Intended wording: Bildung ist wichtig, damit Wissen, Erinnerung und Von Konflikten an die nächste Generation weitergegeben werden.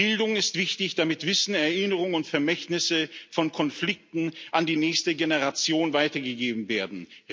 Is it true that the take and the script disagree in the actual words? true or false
true